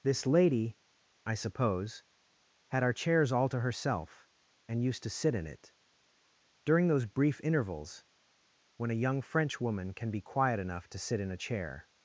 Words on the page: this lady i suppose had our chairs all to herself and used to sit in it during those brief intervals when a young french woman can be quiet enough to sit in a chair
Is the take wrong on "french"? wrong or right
right